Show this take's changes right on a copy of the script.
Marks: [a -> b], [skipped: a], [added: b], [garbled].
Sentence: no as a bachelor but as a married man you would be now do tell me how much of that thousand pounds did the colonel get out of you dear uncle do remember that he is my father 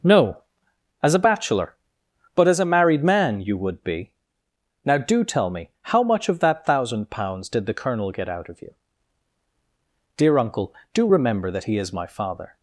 no as a bachelor but as a married man you would be now do tell me how much of that thousand pounds did the colonel get out of you dear uncle do remember that he is my father